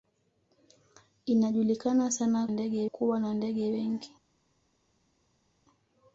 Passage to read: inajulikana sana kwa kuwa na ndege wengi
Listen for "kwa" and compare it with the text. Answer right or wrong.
wrong